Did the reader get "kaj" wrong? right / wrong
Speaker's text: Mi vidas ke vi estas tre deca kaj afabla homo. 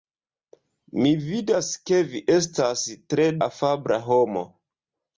wrong